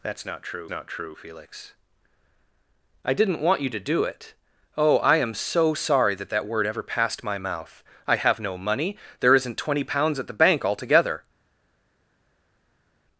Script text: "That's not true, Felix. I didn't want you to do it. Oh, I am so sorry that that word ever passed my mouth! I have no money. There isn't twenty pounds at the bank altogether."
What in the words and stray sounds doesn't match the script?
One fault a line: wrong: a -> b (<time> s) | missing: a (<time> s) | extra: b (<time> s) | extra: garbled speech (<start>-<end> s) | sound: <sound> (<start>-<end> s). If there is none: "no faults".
extra: not true (0.7 s)